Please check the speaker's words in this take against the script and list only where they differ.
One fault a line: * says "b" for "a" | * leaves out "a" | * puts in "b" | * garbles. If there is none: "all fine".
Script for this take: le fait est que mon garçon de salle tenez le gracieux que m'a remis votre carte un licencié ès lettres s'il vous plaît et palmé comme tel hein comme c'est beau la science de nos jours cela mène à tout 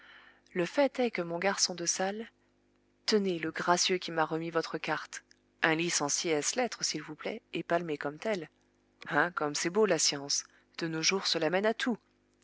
* says "qui" for "que"